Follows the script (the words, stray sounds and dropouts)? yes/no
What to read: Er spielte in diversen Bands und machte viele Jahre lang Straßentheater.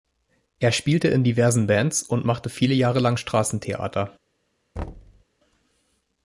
no